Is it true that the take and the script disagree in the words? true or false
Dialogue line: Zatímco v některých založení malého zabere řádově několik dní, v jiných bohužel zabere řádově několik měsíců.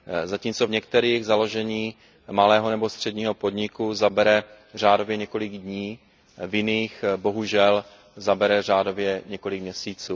true